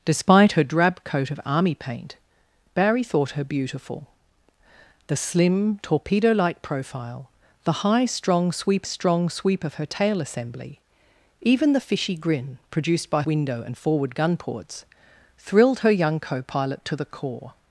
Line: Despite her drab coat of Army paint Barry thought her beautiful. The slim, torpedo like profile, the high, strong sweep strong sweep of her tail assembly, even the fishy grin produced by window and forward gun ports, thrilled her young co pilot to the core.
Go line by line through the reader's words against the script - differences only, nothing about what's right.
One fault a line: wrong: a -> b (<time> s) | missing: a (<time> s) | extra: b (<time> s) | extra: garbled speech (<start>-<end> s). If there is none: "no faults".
no faults